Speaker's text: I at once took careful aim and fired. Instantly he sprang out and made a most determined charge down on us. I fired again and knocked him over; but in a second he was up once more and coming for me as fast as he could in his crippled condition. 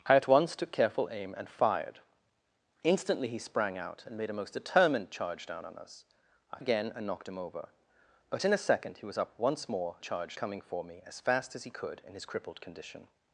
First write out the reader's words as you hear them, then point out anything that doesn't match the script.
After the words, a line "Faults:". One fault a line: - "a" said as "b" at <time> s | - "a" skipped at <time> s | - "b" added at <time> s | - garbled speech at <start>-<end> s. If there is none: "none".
I at once took careful aim and fired. Instantly he sprang out and made a most determined charge down on us. I again and knocked him over; but in a second he was up once more charge coming for me as fast as he could in his crippled condition.
Faults:
- "fired" skipped at 6.6 s
- "and" said as "charge" at 10.0 s